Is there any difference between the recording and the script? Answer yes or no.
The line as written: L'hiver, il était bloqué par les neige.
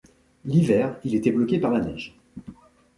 yes